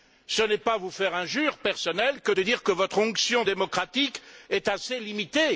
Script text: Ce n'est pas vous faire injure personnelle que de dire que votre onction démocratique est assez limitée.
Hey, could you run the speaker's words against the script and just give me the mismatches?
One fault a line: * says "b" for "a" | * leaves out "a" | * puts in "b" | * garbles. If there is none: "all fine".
all fine